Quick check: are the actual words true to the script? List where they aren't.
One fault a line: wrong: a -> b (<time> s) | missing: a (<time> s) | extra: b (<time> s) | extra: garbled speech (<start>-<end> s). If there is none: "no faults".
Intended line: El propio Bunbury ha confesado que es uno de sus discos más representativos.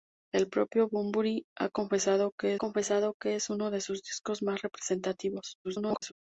extra: confesado que (2.5 s)
extra: garbled speech (5.6-6.1 s)